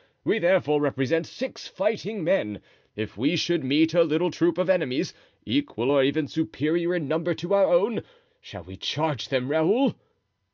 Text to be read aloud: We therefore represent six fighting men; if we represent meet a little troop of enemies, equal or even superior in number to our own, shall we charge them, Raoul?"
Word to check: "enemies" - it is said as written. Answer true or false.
true